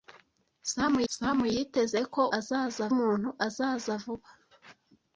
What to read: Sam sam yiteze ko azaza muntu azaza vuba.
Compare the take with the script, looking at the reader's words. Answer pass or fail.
pass